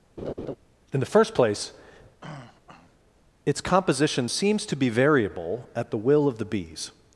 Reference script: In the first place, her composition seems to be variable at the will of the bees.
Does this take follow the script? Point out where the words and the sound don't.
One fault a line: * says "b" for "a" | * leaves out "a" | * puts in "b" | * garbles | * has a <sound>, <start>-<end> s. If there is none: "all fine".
* has a laugh, 0.2-0.6 s
* has a throat clearing, 2.2-3.0 s
* says "its" for "her"